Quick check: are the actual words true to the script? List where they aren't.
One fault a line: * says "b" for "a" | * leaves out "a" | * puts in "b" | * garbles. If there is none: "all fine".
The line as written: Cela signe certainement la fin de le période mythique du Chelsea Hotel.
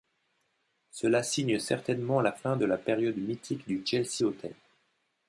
* says "la" for "le"